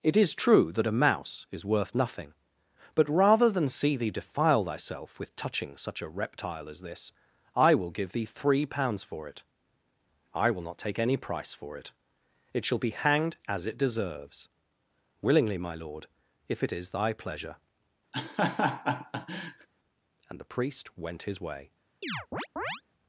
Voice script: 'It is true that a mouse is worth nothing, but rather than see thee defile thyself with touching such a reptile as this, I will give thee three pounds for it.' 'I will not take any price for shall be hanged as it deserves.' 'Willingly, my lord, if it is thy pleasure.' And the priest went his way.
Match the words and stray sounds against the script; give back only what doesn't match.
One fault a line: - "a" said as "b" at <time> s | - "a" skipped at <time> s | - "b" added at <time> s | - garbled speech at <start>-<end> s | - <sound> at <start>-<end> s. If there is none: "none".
- "it It" added at 11.8 s
- laugh at 18.1-19.7 s
- chirp at 22.0-22.8 s